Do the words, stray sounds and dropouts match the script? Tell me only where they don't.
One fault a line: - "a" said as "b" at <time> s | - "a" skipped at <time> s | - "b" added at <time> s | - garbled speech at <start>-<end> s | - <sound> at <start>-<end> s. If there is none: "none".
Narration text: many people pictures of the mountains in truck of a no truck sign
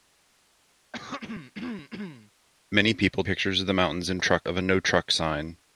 - throat clearing at 0.9-2.3 s